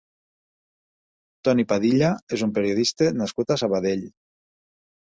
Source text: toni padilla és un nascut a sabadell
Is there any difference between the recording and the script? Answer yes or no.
yes